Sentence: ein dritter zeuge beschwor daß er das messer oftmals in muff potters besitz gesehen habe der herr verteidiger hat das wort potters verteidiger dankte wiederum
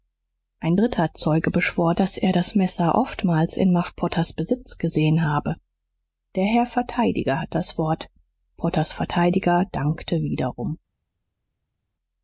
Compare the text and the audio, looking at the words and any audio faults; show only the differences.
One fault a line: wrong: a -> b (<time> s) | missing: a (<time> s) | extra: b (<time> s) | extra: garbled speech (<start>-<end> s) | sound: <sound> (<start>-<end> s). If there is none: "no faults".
no faults